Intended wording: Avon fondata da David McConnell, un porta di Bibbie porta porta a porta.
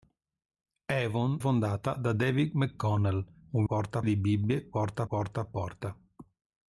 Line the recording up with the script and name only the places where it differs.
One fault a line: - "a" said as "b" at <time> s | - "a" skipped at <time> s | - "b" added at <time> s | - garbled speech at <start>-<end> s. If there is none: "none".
none